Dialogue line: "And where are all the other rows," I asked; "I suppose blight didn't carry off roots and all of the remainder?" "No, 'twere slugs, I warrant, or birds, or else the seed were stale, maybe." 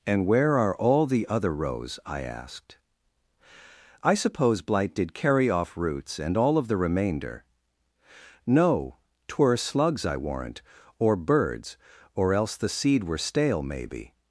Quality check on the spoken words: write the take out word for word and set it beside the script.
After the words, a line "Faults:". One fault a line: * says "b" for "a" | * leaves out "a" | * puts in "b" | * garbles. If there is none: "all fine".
"And where are all the other rows," I asked; "I suppose blight did carry off roots and all of the remainder?" "No, 'twere slugs, I warrant, or birds, or else the seed were stale, maybe."
Faults:
* says "did" for "didn't"